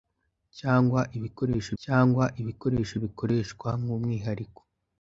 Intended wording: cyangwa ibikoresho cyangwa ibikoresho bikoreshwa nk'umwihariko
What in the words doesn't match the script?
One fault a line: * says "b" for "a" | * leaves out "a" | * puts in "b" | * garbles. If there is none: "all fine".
all fine